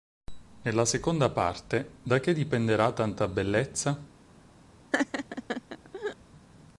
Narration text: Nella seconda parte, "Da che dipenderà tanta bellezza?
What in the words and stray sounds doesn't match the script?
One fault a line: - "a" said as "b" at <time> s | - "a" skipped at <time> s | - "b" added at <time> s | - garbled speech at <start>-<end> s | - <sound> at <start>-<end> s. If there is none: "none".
- laugh at 4.9-6.2 s